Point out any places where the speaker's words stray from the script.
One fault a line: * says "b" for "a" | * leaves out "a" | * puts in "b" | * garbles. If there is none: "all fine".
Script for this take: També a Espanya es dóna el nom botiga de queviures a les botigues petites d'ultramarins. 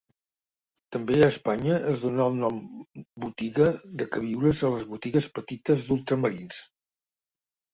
all fine